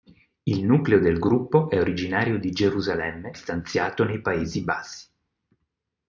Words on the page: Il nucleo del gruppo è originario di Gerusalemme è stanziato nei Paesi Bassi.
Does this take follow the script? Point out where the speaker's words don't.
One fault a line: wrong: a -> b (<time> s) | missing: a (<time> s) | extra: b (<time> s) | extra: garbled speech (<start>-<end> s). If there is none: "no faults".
no faults